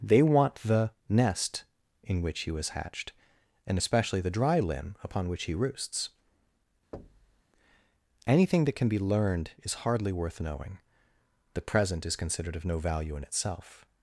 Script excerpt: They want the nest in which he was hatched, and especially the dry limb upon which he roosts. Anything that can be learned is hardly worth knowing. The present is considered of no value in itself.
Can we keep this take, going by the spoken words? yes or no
yes